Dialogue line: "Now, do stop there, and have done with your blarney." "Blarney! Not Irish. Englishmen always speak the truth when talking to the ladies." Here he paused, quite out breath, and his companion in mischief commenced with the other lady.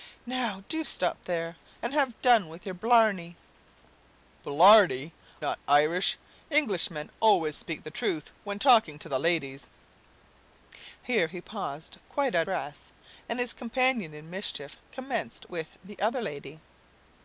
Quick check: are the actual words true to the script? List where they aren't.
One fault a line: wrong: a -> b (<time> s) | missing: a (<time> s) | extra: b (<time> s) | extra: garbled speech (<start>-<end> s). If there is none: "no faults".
no faults